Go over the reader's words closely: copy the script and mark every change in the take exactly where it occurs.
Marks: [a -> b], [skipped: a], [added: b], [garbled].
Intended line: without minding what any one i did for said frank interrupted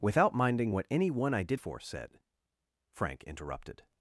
without minding what any one i did for said frank interrupted